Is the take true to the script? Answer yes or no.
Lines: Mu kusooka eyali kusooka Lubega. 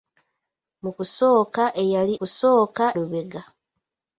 yes